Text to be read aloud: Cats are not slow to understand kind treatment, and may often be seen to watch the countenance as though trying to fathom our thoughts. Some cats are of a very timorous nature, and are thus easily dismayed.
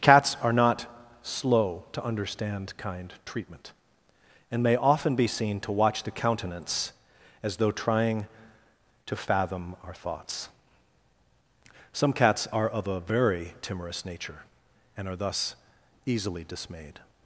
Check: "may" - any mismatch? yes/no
no